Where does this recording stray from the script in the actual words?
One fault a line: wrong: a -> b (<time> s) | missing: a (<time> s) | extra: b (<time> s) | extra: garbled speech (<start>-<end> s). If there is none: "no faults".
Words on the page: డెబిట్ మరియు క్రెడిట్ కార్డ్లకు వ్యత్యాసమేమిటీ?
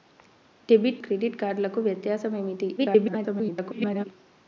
missing: మరియు (1.0 s)
extra: garbled speech (2.8-4.1 s)